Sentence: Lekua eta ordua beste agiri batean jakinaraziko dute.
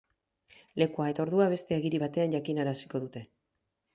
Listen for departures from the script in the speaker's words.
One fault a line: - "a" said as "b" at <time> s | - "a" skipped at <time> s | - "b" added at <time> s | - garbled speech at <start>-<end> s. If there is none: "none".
none